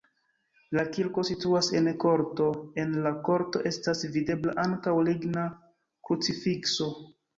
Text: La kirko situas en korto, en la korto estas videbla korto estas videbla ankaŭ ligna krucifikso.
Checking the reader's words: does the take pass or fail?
fail